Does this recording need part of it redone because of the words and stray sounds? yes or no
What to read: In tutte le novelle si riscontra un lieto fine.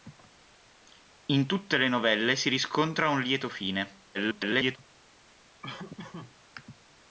yes